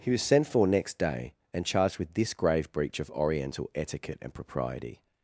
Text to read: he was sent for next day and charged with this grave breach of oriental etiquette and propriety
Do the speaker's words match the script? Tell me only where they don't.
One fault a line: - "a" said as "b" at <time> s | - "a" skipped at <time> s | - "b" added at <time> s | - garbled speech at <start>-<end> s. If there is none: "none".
none